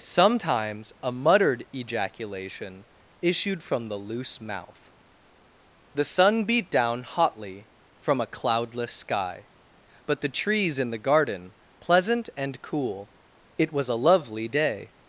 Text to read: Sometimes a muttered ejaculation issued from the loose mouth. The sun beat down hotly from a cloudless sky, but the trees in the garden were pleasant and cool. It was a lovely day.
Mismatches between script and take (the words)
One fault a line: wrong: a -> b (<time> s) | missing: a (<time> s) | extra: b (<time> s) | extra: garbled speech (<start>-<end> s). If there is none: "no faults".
missing: were (11.5 s)